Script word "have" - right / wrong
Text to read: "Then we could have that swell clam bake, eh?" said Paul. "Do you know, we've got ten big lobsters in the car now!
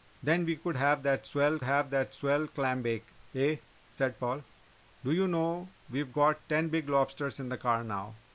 right